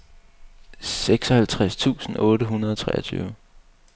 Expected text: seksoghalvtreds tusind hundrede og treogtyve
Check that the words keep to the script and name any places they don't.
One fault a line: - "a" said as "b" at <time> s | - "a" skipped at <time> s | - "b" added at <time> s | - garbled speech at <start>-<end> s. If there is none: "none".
- "otte" added at 2.2 s